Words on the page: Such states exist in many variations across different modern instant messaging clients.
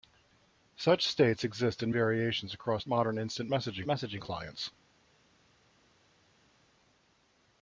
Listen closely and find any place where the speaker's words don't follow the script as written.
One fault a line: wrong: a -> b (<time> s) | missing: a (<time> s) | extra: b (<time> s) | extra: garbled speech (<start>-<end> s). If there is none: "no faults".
missing: many (1.9 s)
missing: different (2.8 s)
extra: messaging (3.9 s)